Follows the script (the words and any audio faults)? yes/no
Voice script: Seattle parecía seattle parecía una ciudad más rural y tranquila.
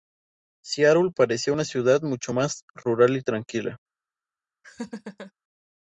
no